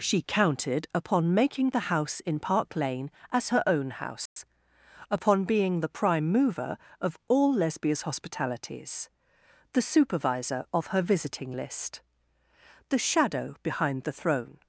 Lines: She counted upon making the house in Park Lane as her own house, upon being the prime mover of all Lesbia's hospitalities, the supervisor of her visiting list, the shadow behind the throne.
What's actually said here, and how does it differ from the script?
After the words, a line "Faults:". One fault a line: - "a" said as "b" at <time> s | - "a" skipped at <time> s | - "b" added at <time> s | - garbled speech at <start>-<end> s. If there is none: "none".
She counted upon making the house in Park Lane as her own house, upon being the prime mover of all Lesbia's hospitalities, the supervisor of her visiting list, the shadow behind the throne.
Faults:
none